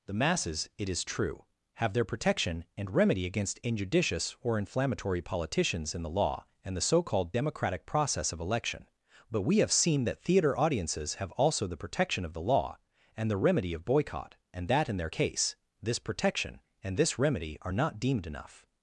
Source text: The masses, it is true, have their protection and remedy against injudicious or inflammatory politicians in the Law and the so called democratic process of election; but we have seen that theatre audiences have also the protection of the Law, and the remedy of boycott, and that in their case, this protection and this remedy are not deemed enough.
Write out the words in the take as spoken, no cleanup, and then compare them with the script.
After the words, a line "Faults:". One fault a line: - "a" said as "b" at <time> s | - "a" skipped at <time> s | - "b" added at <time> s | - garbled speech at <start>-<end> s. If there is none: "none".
The masses, it is true, have their protection and remedy against injudicious or inflammatory politicians in the Law and the so called democratic process of election; but we have seen that theatre audiences have also the protection of the Law, and the remedy of boycott, and that in their case, this protection and this remedy are not deemed enough.
Faults:
none